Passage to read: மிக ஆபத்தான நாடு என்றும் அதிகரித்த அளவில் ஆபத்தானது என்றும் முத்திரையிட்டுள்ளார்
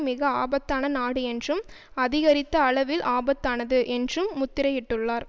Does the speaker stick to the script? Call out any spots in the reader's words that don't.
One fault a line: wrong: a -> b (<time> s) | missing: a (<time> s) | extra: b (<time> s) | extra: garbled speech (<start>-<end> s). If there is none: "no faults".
no faults